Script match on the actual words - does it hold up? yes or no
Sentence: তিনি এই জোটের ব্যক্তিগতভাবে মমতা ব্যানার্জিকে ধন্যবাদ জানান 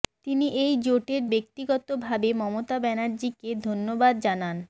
yes